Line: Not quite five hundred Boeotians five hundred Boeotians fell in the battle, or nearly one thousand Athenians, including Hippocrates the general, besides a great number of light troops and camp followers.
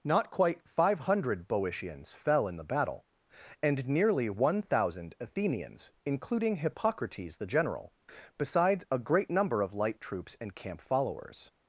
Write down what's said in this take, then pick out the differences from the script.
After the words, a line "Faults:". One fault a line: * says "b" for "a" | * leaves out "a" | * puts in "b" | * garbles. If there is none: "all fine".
Not quite five hundred Boeotians fell in the battle, and nearly one thousand Athenians, including Hippocrates the general, besides a great number of light troops and camp followers.
Faults:
* leaves out "five hundred Boeotians"
* says "and" for "or"